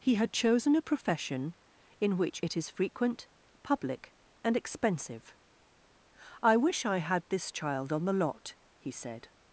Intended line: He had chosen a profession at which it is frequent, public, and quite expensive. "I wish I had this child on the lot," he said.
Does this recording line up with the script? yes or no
no